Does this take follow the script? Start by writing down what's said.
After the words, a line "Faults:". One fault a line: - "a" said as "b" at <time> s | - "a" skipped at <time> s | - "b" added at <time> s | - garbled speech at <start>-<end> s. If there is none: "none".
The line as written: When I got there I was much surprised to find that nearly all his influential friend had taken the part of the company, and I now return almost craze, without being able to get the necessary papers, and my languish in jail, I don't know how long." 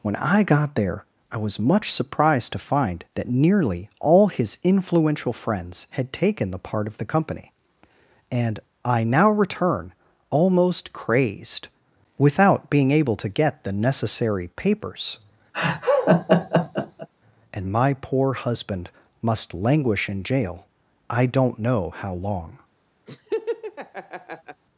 When I got there I was much surprised to find that nearly all his influential friends had taken the part of the company, and I now return almost crazed, without being able to get the necessary papers, and my poor husband must languish in jail, I don't know how long."
Faults:
- "friend" said as "friends" at 5.3 s
- "craze" said as "crazed" at 10.9 s
- "poor husband must" added at 17.9 s